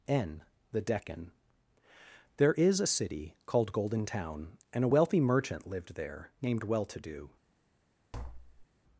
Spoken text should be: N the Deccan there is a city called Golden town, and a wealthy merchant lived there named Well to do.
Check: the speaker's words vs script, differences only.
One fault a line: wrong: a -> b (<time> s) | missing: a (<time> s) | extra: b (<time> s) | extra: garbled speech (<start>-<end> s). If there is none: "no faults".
no faults